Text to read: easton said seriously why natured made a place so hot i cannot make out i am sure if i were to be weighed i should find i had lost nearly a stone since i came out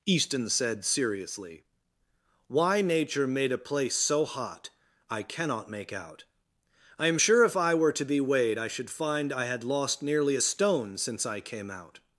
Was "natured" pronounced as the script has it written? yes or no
no